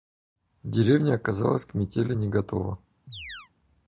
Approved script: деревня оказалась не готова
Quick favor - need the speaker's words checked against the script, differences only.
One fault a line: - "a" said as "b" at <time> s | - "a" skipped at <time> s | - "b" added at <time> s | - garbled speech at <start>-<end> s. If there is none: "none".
- "к метели" added at 1.6 s